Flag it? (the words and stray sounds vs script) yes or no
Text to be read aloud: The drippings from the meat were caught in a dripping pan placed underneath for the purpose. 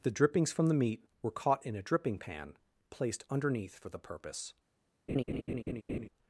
yes